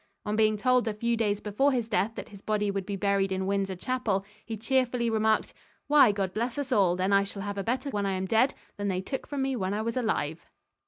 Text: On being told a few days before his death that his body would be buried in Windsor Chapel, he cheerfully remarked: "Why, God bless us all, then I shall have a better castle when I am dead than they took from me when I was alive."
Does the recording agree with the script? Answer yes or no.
no